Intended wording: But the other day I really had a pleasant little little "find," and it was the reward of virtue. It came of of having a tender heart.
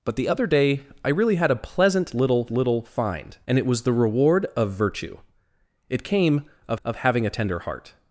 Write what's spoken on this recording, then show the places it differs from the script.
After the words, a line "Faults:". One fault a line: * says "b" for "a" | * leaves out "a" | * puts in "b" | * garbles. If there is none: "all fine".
But the other day I really had a pleasant little little "find," and it was the reward of virtue. It came of of having a tender heart.
Faults:
all fine